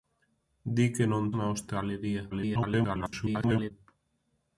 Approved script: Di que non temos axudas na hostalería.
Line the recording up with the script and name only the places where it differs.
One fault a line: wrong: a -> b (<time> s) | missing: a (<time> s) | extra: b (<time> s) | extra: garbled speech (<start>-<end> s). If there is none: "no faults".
missing: temos axudas (1.2 s)
extra: garbled speech (2.3-3.7 s)